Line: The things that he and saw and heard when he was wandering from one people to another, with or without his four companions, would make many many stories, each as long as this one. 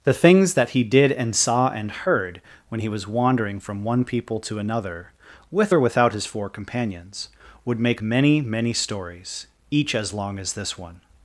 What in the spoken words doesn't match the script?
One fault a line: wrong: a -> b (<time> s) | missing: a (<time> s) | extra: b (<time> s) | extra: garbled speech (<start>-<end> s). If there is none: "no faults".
extra: did (0.8 s)